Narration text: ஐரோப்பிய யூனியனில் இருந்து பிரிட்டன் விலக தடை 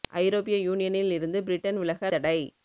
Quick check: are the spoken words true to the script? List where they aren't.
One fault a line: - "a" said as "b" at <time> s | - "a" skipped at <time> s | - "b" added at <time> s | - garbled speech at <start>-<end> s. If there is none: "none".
none